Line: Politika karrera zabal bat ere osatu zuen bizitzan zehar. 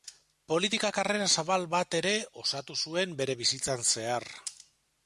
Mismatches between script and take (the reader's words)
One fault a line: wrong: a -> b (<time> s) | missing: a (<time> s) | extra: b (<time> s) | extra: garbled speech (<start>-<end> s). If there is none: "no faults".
extra: bere (3.2 s)